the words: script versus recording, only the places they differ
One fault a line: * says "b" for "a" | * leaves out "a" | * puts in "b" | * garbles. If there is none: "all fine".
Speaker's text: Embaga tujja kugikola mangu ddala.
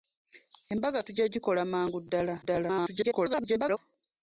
* garbles